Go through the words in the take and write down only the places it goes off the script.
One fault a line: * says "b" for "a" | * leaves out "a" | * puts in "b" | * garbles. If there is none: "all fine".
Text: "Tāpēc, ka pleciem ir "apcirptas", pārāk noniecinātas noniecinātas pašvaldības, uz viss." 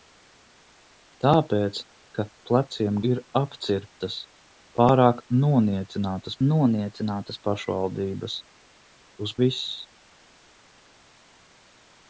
all fine